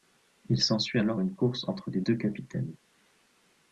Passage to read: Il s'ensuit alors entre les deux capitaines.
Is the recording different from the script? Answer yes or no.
yes